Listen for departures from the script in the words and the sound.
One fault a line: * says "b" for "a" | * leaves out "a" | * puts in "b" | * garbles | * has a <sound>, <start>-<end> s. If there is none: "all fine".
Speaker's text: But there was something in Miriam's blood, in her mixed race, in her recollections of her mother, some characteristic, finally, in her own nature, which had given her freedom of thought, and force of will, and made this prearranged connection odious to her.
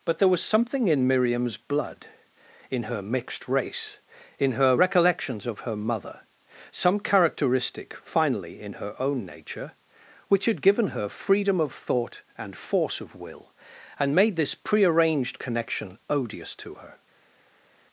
all fine